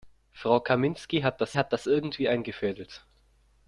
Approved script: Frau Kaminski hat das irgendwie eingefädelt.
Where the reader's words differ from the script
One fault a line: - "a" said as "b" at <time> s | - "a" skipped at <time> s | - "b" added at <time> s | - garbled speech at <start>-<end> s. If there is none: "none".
- "hat das" added at 1.5 s